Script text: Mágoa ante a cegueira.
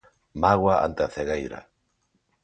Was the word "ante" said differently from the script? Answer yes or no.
no